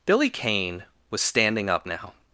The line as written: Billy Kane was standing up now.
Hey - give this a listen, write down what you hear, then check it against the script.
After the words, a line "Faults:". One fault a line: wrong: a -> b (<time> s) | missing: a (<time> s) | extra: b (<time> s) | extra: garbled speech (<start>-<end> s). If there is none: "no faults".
Billy Kane was standing up now.
Faults:
no faults